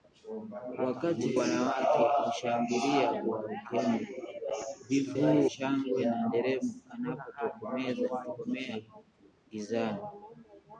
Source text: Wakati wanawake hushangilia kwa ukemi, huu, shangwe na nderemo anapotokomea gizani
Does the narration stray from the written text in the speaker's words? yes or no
no